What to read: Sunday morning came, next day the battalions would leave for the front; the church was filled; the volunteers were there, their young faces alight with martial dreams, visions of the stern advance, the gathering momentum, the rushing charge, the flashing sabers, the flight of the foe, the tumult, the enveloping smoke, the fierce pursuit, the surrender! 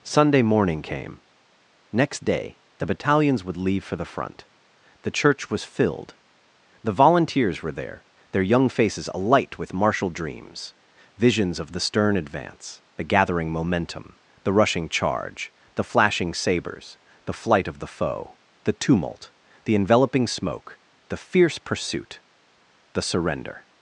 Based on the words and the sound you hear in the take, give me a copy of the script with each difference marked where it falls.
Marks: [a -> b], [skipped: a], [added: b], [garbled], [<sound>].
Sunday morning came, next day the battalions would leave for the front; the church was filled; the volunteers were there, their young faces alight with martial dreams, visions of the stern advance, the gathering momentum, the rushing charge, the flashing sabers, the flight of the foe, the tumult, the enveloping smoke, the fierce pursuit, the surrender!